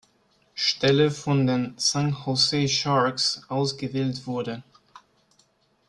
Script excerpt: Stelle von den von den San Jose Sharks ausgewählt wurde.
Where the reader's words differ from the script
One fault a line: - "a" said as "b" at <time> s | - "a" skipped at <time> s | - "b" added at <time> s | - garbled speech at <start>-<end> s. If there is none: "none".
- "von den" skipped at 1.8 s